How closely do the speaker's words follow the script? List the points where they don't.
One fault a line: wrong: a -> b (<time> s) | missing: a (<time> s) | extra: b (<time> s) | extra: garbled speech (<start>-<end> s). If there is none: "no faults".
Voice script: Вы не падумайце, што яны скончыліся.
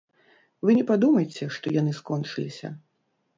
no faults